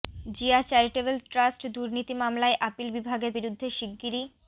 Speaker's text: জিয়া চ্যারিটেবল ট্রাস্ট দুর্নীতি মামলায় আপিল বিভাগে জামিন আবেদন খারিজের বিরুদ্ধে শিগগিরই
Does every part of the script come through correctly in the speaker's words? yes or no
no